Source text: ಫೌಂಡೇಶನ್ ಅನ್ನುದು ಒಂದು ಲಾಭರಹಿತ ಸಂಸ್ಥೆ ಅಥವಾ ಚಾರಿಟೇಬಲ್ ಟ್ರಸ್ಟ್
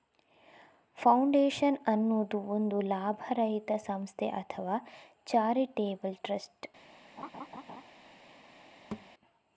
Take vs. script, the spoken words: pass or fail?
pass